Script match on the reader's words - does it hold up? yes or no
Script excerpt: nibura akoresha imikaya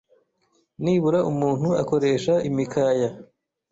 no